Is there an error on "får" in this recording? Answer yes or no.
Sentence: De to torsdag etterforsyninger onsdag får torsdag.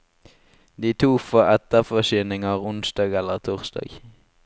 yes